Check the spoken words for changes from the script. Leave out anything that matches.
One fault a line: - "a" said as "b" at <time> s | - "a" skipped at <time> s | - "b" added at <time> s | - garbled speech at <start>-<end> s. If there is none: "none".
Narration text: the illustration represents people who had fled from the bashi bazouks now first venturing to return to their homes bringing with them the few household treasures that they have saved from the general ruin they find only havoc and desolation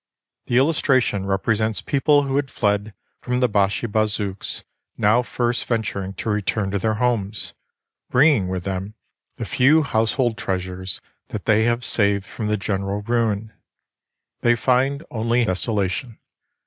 - "havoc and" skipped at 15.4 s